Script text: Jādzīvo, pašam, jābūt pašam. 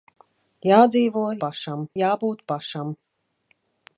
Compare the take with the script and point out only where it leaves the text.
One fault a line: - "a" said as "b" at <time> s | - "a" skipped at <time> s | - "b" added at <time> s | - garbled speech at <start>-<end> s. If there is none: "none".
none